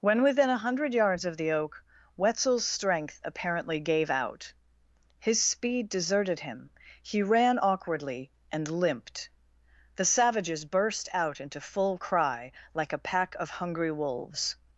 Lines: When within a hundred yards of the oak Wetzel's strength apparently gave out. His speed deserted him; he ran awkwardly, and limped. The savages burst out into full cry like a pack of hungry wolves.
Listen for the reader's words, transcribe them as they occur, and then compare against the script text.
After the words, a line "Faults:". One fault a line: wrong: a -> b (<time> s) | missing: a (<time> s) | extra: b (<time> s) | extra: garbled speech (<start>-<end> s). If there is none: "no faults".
When within a hundred yards of the oak Wetzel's strength apparently gave out. His speed deserted him; he ran awkwardly, and limped. The savages burst out into full cry like a pack of hungry wolves.
Faults:
no faults